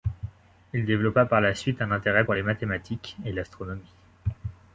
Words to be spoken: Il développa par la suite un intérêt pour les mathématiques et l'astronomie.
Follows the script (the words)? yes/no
yes